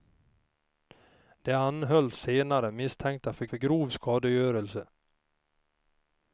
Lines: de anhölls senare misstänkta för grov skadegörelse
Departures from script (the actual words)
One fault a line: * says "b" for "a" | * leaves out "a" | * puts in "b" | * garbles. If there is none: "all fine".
* puts in "för"